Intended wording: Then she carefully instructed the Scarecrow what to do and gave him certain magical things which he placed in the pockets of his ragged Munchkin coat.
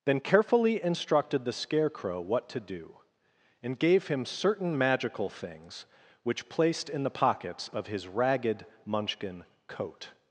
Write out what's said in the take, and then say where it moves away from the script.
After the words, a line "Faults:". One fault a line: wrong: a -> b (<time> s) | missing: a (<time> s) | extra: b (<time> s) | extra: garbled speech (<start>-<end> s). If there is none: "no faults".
Then carefully instructed the Scarecrow what to do and gave him certain magical things which placed in the pockets of his ragged Munchkin coat.
Faults:
missing: she (0.2 s)
missing: he (6.5 s)